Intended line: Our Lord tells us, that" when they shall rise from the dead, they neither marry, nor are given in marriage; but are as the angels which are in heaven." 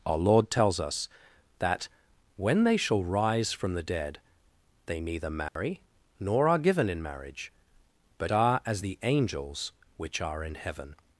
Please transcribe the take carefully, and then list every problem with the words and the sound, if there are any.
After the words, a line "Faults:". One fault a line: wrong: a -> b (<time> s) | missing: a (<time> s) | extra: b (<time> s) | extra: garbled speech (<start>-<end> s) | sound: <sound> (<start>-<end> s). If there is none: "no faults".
Our Lord tells us, that" when they shall rise from the dead, they neither marry, nor are given in marriage; but are as the angels which are in heaven."
Faults:
sound: dropout (5.5-5.6 s)